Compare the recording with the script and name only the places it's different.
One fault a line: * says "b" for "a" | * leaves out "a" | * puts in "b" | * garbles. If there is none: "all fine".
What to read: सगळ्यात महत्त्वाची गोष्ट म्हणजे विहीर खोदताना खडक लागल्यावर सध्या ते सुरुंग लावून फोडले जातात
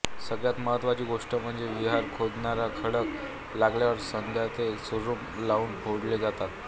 all fine